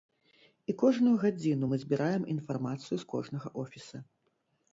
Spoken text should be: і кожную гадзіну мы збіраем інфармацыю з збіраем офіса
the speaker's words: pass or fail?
fail